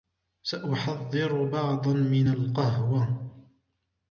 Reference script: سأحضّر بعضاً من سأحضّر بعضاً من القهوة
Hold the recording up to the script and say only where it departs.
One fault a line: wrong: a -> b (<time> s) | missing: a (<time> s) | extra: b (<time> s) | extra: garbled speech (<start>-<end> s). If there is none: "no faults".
missing: سأحضّر بعضاً من (2.3 s)